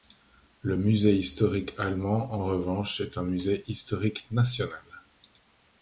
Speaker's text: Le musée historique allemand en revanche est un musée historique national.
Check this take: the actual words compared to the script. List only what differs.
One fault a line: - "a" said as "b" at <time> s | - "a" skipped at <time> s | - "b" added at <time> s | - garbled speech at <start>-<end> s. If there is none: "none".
none